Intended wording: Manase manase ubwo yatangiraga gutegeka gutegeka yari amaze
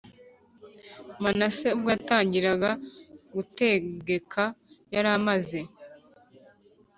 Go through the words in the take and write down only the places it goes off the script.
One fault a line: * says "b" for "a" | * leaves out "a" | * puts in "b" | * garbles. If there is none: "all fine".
* leaves out "manase"
* leaves out "gutegeka"